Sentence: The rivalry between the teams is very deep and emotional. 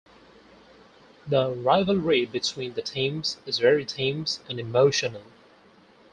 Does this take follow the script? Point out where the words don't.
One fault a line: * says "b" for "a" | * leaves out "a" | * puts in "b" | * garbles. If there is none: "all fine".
* says "teams" for "deep"